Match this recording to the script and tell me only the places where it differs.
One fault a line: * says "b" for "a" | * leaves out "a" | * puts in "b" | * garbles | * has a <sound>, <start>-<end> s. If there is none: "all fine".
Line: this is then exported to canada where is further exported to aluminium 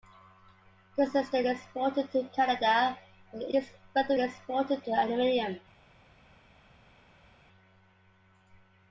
all fine